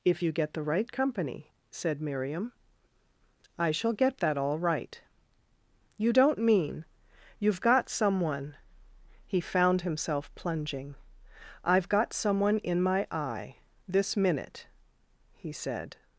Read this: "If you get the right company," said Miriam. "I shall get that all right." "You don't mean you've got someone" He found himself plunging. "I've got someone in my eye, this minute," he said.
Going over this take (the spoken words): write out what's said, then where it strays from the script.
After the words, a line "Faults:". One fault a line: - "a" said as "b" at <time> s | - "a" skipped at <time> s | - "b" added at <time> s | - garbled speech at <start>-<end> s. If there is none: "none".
"If you get the right company," said Miriam. "I shall get that all right." "You don't mean you've got someone" He found himself plunging. "I've got someone in my eye, this minute," he said.
Faults:
none